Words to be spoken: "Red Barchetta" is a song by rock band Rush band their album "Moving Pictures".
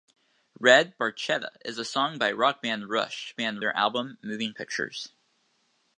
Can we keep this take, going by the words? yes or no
yes